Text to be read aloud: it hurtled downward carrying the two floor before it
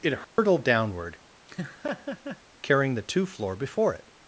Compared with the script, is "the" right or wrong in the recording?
right